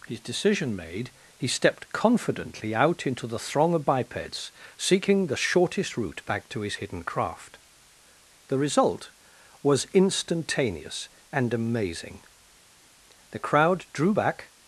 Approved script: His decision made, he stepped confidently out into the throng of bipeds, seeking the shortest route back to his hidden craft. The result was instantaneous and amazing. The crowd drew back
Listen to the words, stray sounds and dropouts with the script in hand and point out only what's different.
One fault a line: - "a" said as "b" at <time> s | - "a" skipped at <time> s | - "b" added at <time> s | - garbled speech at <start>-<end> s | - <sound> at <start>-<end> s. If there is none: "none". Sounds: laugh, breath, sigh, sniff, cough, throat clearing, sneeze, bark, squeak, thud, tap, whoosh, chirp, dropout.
none